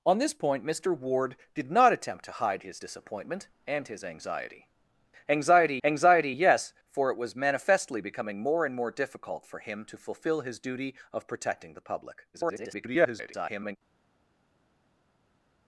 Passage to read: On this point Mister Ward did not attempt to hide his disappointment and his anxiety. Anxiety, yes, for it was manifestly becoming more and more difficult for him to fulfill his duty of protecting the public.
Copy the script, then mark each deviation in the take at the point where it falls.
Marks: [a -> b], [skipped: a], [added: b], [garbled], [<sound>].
On this point Mister Ward did not attempt to hide his disappointment and his anxiety. Anxiety, [added: anxiety] yes, for it was manifestly becoming more and more difficult for him to fulfill his duty of protecting the public. [garbled]